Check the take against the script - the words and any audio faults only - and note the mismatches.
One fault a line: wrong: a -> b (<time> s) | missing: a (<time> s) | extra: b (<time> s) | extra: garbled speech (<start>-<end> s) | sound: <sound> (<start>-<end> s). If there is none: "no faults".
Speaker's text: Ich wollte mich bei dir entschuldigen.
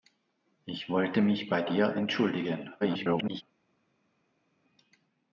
extra: garbled speech (2.8-3.4 s)